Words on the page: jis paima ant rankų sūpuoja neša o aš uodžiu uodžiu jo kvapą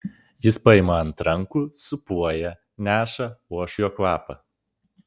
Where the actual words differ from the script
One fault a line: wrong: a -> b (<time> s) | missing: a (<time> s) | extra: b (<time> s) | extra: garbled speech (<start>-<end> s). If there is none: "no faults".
missing: uodžiu uodžiu (3.8 s)